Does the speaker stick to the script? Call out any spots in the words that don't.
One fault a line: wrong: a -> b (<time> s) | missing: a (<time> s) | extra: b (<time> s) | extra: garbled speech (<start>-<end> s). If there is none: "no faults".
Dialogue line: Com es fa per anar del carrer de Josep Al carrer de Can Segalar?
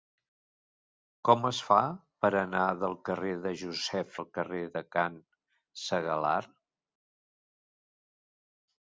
no faults